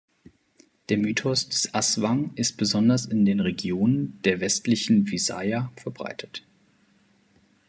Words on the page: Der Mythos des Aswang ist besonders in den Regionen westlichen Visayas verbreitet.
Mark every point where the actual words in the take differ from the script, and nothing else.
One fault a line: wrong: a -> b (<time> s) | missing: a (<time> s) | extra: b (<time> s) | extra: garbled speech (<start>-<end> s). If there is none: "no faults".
extra: der (4.2 s)